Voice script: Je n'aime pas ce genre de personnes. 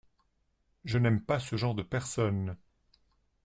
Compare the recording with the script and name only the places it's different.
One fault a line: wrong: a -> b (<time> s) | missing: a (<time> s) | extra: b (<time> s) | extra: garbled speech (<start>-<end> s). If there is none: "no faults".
no faults